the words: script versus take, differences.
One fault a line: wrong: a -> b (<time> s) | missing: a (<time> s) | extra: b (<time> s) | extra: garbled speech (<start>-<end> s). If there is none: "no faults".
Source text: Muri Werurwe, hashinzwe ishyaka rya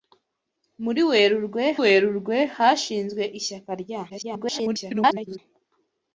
extra: Werurwe (1.8 s)
extra: garbled speech (4.1-5.4 s)